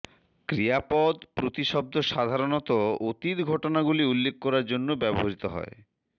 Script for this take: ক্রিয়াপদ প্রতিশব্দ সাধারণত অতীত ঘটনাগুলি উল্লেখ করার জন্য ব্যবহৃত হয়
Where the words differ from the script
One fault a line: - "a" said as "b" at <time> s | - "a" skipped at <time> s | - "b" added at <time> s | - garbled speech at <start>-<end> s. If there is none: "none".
none